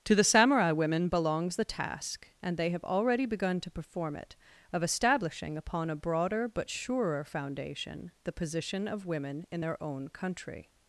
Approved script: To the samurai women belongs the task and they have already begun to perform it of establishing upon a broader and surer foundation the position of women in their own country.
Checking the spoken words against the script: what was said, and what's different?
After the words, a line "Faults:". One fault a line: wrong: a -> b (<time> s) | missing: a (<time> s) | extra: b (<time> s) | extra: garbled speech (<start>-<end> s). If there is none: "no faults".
To the samurai women belongs the task and they have already begun to perform it of establishing upon a broader but surer foundation the position of women in their own country.
Faults:
wrong: and -> but (6.5 s)